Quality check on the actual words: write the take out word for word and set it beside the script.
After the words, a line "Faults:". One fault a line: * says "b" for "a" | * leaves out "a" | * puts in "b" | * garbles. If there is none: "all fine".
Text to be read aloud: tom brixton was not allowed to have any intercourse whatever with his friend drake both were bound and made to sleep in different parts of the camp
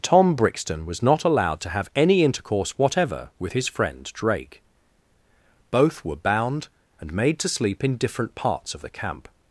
tom brixton was not allowed to have any intercourse whatever with his friend drake both were bound and made to sleep in different parts of the camp
Faults:
all fine